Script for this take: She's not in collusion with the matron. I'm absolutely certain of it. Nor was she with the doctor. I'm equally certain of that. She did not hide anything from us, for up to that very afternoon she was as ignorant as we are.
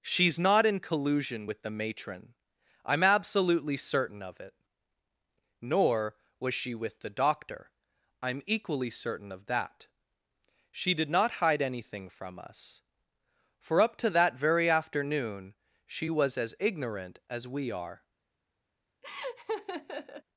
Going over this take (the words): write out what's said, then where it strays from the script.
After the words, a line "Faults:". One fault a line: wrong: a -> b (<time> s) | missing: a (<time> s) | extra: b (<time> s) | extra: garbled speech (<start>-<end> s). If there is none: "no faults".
She's not in collusion with the matron. I'm absolutely certain of it. Nor was she with the doctor. I'm equally certain of that. She did not hide anything from us, for up to that very afternoon she was as ignorant as we are.
Faults:
no faults